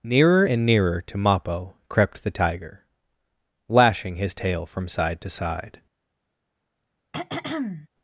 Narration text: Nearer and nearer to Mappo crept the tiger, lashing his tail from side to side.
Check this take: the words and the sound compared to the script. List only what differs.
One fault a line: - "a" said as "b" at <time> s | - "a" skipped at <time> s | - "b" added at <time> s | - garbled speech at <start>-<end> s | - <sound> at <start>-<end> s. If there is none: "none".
- throat clearing at 7.1-7.9 s